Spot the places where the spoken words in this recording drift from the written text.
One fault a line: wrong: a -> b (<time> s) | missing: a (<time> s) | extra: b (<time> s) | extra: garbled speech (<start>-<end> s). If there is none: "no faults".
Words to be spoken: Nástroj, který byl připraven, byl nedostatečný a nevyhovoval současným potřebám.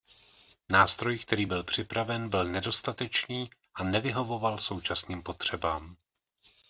no faults